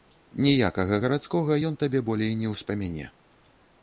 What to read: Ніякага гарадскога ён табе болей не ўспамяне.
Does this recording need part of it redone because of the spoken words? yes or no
no